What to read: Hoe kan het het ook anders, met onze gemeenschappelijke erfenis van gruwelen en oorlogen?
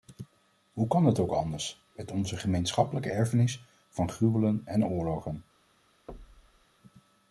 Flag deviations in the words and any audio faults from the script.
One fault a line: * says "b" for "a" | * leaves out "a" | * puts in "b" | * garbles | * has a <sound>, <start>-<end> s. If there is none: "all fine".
* leaves out "het"
* has a thud, 6.1-6.7 s